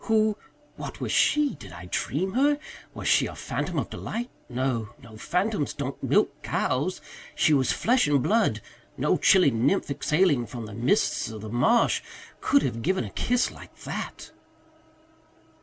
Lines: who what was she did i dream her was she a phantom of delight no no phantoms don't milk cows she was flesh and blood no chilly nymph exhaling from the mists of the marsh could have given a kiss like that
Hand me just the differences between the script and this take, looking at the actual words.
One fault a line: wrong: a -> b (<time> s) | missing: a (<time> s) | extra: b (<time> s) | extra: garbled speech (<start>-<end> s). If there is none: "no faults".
no faults